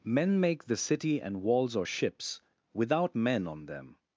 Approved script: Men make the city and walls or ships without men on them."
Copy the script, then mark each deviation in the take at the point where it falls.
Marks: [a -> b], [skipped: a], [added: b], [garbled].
Men make the city and walls or ships without men on them."